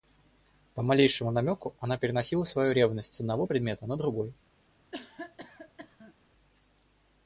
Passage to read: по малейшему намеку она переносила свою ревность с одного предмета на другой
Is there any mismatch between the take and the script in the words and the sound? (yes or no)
yes